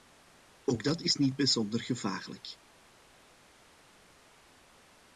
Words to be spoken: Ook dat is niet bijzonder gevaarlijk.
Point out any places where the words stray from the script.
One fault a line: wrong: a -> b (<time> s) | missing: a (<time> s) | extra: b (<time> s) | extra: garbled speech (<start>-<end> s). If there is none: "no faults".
no faults